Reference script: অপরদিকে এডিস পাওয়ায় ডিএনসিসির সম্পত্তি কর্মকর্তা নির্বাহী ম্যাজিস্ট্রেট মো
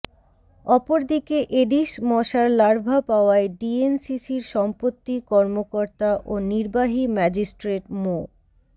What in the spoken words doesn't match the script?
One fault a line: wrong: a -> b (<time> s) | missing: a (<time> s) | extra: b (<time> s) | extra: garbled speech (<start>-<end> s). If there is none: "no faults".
extra: মশার লার্ভা (2.1 s)
extra: ও (6.2 s)